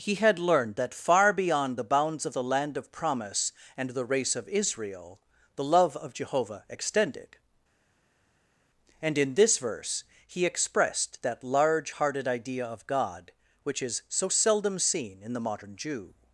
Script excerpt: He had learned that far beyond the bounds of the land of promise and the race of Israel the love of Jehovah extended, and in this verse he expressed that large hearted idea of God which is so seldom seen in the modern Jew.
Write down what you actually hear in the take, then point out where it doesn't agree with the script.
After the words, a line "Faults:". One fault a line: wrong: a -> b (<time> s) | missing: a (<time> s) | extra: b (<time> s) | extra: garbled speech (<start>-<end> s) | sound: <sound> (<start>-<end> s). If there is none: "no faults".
He had learned that far beyond the bounds of the land of promise and the race of Israel the love of Jehovah extended, and in this verse he expressed that large hearted idea of God which is so seldom seen in the modern Jew.
Faults:
no faults